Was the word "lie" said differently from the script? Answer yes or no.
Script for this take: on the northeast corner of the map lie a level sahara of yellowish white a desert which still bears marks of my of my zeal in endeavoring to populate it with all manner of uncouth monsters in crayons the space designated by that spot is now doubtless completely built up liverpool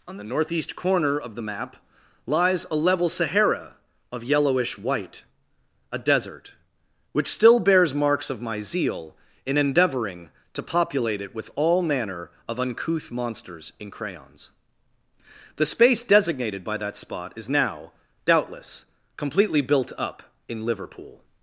yes